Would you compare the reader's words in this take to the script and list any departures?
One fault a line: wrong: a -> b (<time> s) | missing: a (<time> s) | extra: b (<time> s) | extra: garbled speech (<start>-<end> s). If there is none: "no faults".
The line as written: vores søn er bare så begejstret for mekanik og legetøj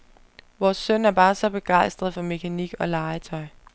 no faults